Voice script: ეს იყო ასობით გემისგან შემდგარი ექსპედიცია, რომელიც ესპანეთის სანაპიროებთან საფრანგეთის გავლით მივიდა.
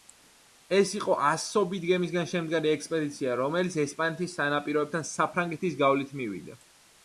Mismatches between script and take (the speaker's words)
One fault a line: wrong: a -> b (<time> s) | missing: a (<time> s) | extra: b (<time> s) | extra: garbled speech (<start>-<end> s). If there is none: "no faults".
no faults